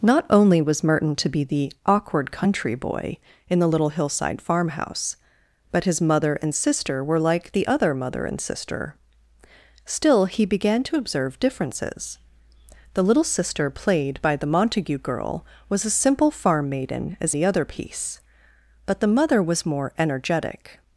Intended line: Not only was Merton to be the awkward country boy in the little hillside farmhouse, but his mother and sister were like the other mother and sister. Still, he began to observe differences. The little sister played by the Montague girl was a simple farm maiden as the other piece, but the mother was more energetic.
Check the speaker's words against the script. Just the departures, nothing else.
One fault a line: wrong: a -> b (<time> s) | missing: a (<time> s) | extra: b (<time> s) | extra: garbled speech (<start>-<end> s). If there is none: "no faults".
no faults